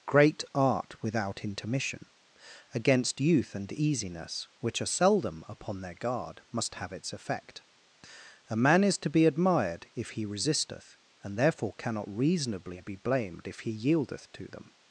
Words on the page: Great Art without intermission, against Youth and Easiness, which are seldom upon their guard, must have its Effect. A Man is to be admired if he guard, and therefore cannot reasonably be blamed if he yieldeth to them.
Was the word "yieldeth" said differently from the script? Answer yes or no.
no